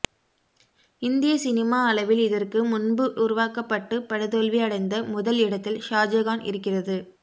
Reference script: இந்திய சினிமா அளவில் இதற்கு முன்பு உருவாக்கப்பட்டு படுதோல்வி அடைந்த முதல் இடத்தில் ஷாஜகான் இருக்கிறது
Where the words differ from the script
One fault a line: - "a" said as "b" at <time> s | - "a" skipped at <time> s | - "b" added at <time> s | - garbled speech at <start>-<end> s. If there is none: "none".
none